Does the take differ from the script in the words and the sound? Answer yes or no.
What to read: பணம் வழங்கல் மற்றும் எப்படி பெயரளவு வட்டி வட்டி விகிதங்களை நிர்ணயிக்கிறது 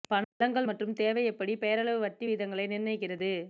yes